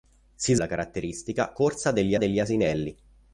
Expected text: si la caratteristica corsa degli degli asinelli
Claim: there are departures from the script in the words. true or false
false